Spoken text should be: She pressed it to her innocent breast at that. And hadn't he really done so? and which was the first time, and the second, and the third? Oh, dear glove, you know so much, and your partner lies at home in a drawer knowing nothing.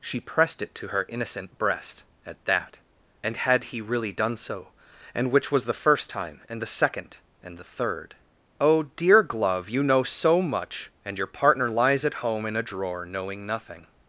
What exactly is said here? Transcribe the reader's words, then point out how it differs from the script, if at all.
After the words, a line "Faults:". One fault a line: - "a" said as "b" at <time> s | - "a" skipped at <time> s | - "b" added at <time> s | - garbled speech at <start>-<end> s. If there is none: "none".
She pressed it to her innocent breast at that. And had he really done so? and which was the first time, and the second, and the third? Oh, dear glove, you know so much, and your partner lies at home in a drawer knowing nothing.
Faults:
- "hadn't" said as "had" at 3.4 s